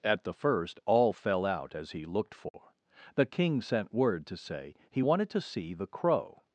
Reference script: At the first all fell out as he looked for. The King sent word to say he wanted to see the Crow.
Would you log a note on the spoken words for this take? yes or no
no